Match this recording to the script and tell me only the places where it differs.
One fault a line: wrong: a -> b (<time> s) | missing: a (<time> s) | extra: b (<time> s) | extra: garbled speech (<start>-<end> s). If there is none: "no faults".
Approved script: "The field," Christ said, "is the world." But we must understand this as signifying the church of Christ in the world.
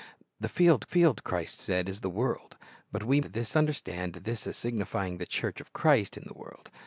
extra: field (0.8 s)
wrong: must -> this (3.2 s)